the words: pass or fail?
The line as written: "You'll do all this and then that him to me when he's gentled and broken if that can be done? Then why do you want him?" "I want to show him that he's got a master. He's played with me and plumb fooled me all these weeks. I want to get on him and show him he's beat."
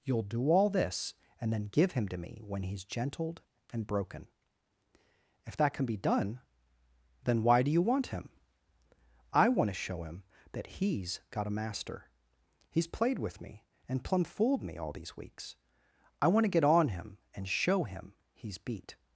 fail